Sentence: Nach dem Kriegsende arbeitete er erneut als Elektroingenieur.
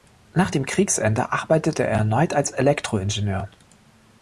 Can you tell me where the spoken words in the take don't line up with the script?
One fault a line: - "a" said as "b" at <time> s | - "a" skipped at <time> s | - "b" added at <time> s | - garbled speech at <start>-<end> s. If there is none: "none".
none